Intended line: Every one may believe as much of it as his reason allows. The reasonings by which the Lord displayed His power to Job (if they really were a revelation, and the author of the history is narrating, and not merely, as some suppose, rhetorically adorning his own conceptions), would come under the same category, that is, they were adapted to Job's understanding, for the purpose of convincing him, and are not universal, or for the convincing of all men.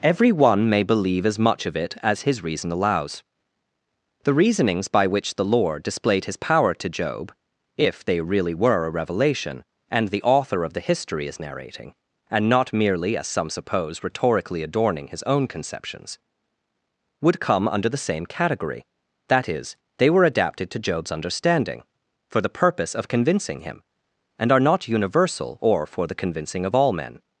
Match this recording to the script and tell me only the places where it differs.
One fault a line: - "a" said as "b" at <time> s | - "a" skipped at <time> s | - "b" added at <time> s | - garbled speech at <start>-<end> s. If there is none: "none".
none